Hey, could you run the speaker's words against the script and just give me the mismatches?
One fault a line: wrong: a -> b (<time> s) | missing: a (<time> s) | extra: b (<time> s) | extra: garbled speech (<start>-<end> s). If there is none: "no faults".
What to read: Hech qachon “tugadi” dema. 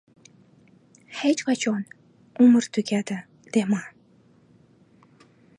extra: umr (2.4 s)